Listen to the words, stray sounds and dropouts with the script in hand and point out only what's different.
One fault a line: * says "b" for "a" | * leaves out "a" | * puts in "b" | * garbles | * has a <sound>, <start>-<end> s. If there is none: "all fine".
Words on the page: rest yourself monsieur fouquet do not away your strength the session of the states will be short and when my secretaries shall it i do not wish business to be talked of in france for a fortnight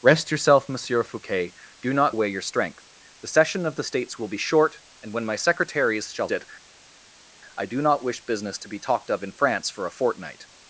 all fine